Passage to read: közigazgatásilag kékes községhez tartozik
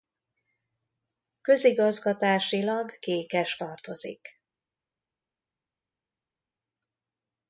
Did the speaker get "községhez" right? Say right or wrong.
wrong